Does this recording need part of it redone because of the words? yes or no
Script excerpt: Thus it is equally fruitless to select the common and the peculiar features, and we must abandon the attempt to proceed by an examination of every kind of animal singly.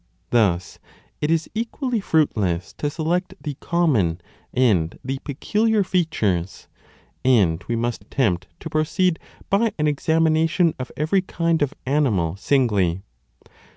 yes